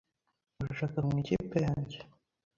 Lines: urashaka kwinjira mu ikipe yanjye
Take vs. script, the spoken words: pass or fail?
fail